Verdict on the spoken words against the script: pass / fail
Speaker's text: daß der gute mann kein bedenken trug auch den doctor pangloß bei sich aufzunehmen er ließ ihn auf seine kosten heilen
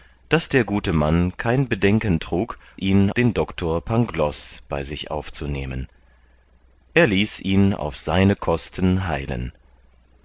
fail